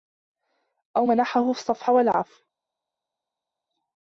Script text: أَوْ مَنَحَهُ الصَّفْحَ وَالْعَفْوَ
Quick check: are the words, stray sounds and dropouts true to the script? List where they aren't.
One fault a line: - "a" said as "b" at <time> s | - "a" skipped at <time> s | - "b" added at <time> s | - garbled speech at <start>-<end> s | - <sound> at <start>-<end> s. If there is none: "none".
none